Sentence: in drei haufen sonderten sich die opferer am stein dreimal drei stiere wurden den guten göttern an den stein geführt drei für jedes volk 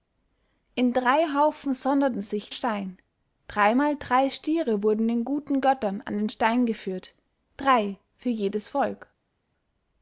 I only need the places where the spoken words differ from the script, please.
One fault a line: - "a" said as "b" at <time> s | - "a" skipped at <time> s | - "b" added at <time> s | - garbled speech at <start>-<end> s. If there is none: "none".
- "die opferer am" skipped at 2.5 s